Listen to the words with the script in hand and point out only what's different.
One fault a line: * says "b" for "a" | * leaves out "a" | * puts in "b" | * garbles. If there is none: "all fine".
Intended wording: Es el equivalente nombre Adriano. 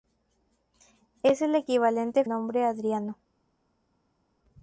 all fine